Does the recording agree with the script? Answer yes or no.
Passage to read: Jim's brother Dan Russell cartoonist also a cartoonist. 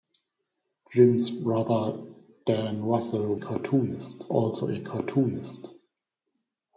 yes